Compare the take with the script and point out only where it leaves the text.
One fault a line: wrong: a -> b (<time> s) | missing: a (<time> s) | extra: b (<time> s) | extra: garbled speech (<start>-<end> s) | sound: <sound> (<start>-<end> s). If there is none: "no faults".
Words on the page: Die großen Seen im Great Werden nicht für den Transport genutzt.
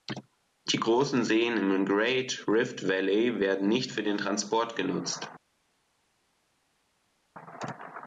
extra: Rift Valley (2.5 s)